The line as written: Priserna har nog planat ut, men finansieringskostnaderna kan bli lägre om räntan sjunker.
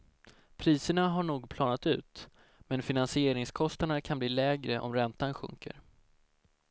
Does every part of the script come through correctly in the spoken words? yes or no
yes